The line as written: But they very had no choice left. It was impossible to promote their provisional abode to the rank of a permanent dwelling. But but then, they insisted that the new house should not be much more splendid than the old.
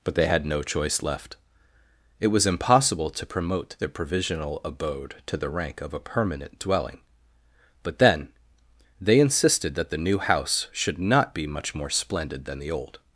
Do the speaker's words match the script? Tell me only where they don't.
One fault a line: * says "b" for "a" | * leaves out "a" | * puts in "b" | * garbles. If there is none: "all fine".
* leaves out "very"
* leaves out "but"